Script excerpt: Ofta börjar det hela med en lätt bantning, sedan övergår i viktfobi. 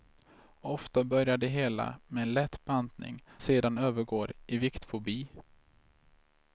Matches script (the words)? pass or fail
pass